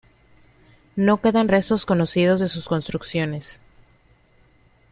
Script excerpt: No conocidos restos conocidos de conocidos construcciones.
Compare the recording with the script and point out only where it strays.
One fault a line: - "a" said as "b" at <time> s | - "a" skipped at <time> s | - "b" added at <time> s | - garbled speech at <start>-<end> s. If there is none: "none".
- "conocidos" said as "quedan" at 1.2 s
- "conocidos" said as "sus" at 2.5 s